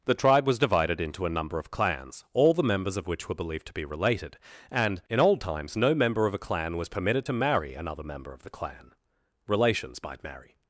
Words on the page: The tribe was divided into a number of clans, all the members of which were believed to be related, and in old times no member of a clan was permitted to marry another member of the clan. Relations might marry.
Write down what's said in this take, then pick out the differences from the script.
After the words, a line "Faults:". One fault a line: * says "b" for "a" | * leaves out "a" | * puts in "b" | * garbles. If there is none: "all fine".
The tribe was divided into a number of clans, all the members of which were believed to be related, and in old times no member of a clan was permitted to marry another member of the clan. Relations might marry.
Faults:
all fine